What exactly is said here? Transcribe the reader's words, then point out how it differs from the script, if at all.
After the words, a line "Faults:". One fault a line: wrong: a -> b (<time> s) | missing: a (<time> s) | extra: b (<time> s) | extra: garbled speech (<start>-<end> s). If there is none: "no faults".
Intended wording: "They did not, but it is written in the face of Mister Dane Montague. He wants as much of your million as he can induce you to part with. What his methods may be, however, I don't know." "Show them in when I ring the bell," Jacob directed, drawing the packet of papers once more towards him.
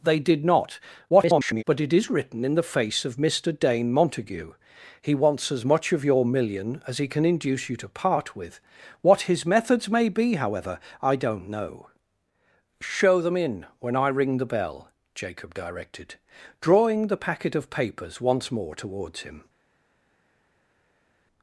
"They did not, [garbled] but it is written in the face of Mister Dane Montague. He wants as much of your million as he can induce you to part with. What his methods may be, however, I don't know." "Show them in when I ring the bell," Jacob directed, drawing the packet of papers once more towards him.
Faults:
extra: garbled speech (1.1-1.6 s)